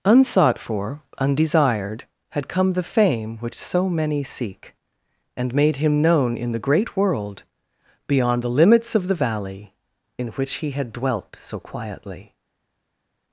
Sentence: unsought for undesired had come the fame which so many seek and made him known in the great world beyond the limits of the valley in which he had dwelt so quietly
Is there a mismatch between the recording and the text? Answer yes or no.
no